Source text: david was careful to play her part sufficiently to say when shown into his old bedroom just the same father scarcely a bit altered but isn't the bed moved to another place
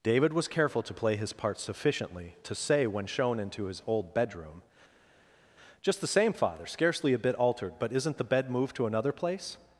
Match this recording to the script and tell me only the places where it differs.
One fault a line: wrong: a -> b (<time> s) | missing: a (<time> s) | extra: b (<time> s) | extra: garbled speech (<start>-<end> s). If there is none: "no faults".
wrong: her -> his (1.2 s)